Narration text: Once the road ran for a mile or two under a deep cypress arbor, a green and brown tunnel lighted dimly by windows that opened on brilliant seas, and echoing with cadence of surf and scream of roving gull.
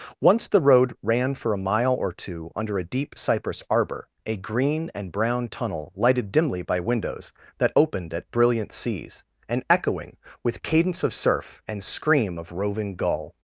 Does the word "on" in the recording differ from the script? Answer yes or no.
yes